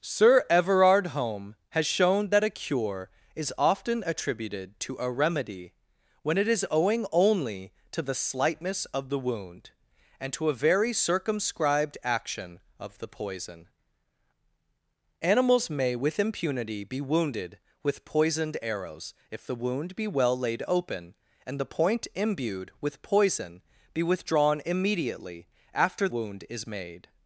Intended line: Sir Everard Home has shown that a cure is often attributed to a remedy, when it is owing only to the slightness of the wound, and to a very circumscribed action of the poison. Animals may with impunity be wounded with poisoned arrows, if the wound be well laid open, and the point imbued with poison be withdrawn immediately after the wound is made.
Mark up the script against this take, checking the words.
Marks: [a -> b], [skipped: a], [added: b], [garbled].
Sir Everard Home has shown that a cure is often attributed to a remedy, when it is owing only to the slightness of the wound, and to a very circumscribed action of the poison. Animals may with impunity be wounded with poisoned arrows, if the wound be well laid open, and the point imbued with poison be withdrawn immediately after [skipped: the] wound is made.